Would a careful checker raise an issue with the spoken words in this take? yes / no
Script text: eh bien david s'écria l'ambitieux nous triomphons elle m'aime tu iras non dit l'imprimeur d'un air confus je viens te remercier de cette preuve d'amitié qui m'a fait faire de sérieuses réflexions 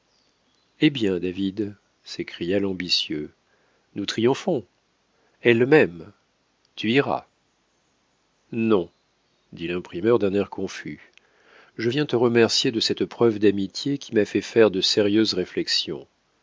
no